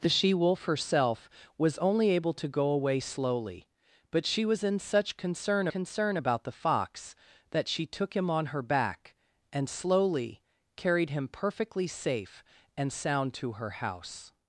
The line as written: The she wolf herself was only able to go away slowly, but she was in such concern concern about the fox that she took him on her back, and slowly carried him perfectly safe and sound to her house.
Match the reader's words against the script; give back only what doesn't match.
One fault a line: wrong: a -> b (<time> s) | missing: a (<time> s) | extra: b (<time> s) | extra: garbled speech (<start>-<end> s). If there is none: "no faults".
no faults